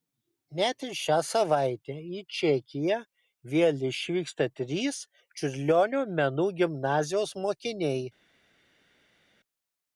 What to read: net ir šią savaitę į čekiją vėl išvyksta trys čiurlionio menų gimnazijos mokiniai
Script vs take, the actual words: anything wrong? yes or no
no